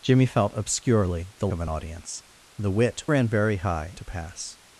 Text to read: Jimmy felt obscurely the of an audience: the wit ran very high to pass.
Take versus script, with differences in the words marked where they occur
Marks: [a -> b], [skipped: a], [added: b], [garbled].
Jimmy felt obscurely the of an audience: the wit ran very high to pass.